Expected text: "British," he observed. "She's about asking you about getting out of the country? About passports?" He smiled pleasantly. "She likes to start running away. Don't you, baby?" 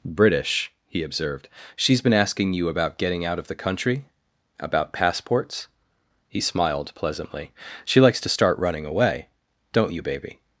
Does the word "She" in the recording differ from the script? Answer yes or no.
no